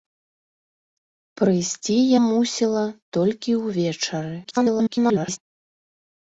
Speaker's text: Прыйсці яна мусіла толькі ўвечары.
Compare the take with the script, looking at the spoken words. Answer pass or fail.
fail